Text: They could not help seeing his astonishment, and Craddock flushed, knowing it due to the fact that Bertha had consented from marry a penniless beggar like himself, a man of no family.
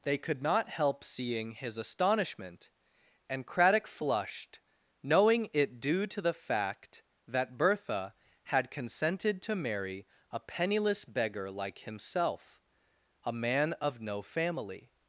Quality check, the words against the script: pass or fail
fail